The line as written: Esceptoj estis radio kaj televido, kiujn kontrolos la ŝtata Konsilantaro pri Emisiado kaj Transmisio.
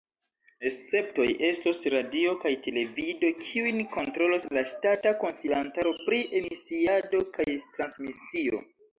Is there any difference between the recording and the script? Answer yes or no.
yes